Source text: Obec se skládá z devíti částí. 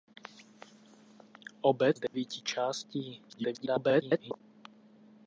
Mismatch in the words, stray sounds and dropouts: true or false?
true